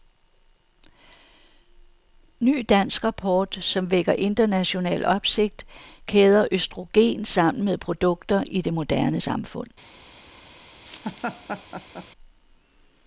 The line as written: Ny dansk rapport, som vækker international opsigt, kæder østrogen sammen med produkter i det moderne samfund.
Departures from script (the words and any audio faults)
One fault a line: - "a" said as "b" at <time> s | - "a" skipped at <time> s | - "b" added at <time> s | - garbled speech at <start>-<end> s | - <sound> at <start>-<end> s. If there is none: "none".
- laugh at 10.9-12.1 s